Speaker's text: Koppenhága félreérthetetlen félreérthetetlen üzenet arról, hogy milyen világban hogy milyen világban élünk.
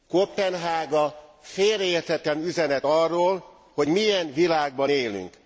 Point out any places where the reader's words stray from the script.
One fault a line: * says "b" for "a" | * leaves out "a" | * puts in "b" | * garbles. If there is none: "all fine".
* leaves out "félreérthetetlen"
* leaves out "hogy milyen világban"